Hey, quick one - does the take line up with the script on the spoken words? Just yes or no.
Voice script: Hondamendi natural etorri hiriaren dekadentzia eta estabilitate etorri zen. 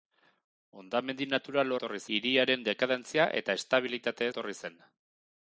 yes